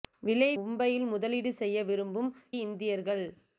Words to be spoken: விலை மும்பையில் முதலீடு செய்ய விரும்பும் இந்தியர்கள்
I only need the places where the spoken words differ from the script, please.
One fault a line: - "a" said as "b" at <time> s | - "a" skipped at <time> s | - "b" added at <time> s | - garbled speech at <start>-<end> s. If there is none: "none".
none